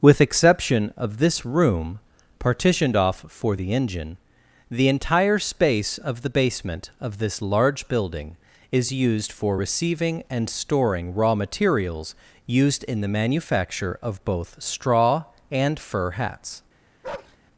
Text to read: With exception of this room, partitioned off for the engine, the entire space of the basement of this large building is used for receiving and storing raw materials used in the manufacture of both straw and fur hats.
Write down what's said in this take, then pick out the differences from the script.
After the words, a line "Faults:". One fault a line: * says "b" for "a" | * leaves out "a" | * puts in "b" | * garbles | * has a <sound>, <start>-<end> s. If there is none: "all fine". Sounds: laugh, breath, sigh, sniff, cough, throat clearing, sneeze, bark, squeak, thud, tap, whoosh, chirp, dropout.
With exception of this room, partitioned off for the engine, the entire space of the basement of this large building is used for receiving and storing raw materials used in the manufacture of both straw and fur hats.
Faults:
* has a bark, 17.0-17.4 s